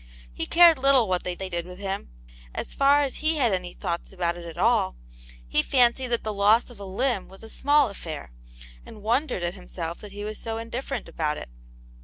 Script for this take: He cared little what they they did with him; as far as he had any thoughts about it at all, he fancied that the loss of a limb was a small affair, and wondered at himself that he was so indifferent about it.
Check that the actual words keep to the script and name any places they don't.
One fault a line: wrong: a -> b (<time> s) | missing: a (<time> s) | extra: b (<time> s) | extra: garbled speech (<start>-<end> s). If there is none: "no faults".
no faults